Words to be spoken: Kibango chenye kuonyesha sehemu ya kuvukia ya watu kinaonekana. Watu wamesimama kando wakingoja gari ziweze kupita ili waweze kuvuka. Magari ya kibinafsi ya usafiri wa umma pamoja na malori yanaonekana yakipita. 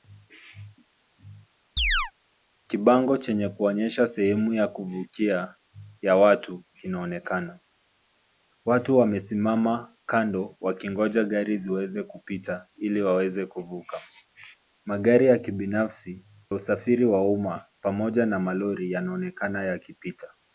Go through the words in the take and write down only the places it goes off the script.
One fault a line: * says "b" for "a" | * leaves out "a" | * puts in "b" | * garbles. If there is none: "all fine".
* leaves out "ya"